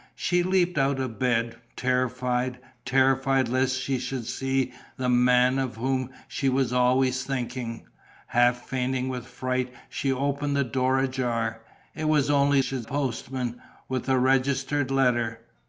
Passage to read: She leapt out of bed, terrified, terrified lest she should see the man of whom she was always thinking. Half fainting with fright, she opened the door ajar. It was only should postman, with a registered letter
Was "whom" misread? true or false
false